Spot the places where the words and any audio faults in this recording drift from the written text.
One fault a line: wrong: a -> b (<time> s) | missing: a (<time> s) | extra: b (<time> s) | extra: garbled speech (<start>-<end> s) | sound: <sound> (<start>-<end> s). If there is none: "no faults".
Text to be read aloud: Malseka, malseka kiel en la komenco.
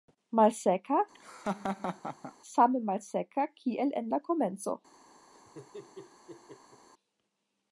sound: laugh (1.1-2.3 s)
extra: same (2.5 s)
sound: laugh (5.3-6.9 s)